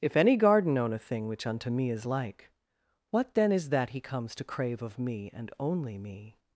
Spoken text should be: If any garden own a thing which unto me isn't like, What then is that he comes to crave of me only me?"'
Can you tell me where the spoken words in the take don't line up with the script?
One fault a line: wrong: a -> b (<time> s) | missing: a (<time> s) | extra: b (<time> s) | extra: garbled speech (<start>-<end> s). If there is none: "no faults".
wrong: isn't -> is (1.9 s)
extra: and (5.3 s)